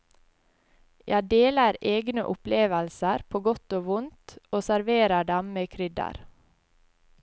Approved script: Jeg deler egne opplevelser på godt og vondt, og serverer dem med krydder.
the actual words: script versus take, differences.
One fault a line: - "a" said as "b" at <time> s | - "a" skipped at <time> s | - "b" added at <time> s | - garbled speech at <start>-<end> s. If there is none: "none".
none